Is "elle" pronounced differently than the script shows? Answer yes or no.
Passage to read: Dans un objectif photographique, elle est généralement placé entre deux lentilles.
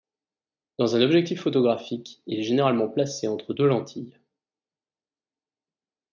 yes